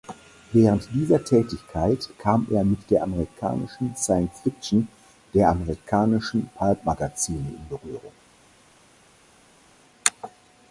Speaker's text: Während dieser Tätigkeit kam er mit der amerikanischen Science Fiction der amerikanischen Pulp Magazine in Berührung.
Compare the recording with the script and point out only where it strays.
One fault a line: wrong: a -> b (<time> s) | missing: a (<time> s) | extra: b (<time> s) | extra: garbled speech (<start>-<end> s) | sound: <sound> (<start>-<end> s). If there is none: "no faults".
no faults